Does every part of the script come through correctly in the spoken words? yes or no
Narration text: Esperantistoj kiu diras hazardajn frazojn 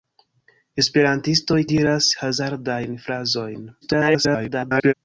no